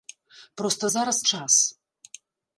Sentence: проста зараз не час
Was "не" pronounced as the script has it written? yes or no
no